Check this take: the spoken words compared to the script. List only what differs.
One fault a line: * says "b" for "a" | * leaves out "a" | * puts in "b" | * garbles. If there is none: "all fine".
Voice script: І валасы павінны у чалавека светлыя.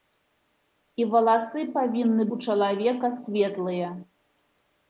all fine